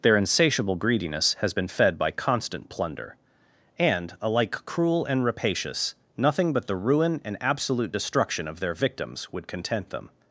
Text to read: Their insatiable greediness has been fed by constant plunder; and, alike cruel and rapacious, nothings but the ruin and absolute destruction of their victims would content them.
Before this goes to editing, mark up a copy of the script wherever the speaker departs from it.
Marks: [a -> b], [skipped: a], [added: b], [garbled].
Their insatiable greediness has been fed by constant plunder; and, alike cruel and rapacious, [nothings -> nothing] but the ruin and absolute destruction of their victims would content them.